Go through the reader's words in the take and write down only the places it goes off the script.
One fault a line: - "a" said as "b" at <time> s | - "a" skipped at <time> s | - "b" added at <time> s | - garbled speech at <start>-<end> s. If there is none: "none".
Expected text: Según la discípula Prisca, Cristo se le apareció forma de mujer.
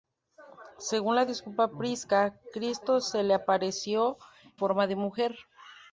none